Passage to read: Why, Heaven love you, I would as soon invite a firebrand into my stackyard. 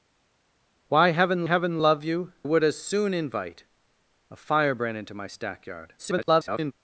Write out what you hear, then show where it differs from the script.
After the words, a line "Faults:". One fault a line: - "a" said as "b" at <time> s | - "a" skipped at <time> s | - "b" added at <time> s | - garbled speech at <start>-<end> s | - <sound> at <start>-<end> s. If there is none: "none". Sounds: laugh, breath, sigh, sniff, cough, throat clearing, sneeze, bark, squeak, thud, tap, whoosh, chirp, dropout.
Why, Heaven Heaven love you, would as soon invite a firebrand into my stackyard. [garbled]
Faults:
- "Heaven" added at 1.4 s
- "I" skipped at 2.3 s
- garbled speech at 6.0-6.7 s